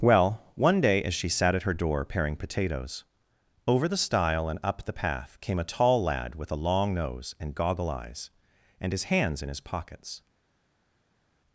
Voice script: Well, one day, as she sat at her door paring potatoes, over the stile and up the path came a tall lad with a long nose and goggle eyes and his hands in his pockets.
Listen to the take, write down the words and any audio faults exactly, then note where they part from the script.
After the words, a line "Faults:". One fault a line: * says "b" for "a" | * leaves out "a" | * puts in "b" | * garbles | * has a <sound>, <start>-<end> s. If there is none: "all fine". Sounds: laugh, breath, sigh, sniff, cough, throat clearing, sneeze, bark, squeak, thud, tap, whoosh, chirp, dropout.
Well, one day, as she sat at her door paring potatoes, over the stile and up the path came a tall lad with a long nose and goggle eyes and his hands in his pockets.
Faults:
all fine